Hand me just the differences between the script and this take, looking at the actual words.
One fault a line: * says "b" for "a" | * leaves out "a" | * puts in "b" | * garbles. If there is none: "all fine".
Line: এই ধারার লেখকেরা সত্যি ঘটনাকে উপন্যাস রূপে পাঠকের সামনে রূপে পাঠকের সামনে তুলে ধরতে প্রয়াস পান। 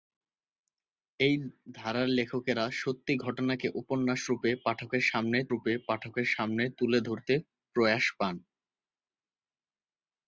all fine